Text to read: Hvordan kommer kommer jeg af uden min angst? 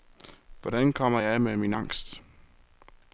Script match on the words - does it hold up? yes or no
no